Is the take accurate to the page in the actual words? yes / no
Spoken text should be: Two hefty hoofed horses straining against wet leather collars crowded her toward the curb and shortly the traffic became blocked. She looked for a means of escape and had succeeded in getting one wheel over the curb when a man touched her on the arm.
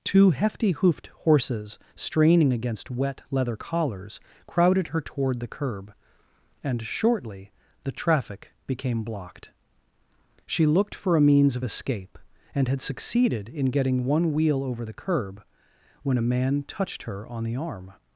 yes